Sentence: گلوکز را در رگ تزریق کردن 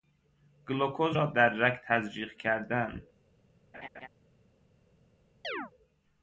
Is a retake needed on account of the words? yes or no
no